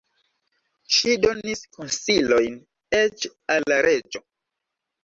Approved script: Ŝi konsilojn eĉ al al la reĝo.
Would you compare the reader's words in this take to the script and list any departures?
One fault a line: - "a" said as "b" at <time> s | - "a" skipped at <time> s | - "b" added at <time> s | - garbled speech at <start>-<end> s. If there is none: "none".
- "donis" added at 1.2 s
- "al" skipped at 3.7 s